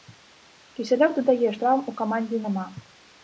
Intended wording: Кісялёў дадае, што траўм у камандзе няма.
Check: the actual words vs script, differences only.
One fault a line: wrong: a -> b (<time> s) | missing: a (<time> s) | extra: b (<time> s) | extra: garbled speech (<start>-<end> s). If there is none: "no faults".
missing: што (1.5 s)